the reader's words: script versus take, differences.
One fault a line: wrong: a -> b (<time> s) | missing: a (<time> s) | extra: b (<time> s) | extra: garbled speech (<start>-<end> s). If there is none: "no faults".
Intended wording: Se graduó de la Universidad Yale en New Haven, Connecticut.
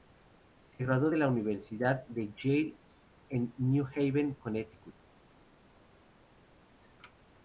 extra: de (2.1 s)